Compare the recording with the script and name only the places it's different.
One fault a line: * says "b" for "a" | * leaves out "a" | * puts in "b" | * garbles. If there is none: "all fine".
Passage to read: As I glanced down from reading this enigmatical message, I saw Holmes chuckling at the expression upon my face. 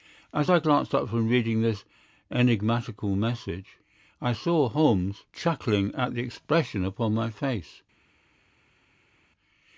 * says "up" for "down"